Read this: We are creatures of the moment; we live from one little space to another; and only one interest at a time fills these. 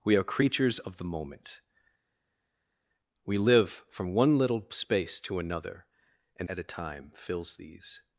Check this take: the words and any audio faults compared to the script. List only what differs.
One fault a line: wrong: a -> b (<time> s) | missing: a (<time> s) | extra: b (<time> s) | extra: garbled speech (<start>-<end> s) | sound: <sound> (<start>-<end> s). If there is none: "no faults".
missing: only one interest (6.5 s)